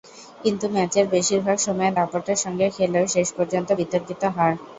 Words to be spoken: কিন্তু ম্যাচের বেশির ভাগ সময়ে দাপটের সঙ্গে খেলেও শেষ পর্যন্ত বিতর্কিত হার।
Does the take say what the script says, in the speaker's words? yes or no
yes